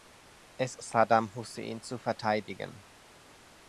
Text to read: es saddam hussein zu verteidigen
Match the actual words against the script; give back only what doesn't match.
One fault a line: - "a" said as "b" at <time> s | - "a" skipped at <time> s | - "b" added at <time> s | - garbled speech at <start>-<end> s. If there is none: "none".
none